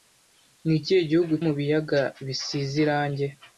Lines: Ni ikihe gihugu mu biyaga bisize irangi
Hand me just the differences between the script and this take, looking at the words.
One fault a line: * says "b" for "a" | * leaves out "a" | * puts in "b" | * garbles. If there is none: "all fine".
all fine